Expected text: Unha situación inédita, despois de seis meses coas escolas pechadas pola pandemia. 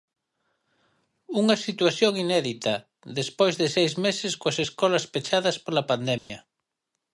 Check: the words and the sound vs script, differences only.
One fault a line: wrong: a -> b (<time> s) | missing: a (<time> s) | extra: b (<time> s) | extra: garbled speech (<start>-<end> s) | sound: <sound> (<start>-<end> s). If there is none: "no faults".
sound: dropout (6.2-6.3 s)